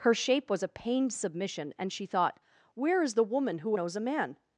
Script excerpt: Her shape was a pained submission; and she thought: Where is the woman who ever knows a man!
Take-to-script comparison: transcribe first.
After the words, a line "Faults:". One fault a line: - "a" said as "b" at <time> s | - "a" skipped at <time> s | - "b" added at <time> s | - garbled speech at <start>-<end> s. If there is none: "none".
Her shape was a pained submission; and she thought: Where is the woman who knows a man!
Faults:
- "ever" skipped at 3.8 s